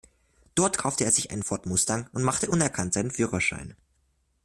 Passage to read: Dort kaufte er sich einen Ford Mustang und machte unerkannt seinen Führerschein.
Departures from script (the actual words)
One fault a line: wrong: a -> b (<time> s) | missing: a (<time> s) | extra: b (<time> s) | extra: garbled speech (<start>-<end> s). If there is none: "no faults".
no faults